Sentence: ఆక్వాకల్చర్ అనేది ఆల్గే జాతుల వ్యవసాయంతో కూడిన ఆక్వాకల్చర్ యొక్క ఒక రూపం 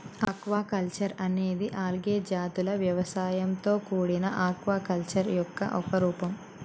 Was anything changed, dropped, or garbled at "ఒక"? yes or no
no